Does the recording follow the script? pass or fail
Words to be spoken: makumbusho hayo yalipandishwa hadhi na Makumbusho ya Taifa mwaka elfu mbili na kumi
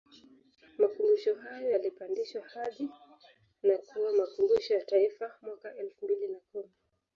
fail